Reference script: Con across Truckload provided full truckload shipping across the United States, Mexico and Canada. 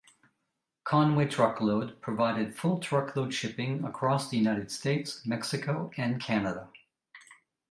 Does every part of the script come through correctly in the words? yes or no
no